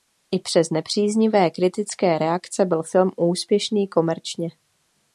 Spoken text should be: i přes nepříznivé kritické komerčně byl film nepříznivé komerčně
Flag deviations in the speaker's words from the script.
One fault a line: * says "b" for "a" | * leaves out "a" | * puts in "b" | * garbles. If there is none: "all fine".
* says "reakce" for "komerčně"
* says "úspěšný" for "nepříznivé"